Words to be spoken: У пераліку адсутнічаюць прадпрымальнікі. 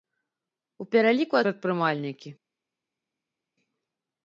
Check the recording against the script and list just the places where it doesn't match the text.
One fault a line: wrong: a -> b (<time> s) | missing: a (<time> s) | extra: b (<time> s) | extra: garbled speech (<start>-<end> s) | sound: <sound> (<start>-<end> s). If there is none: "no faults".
missing: адсутнічаюць (1.4 s)